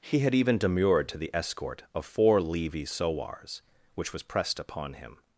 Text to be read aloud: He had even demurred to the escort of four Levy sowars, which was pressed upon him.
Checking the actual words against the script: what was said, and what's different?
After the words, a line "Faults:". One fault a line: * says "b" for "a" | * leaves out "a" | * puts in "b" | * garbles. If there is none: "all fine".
He had even demurred to the escort of four Levy sowars, which was pressed upon him.
Faults:
all fine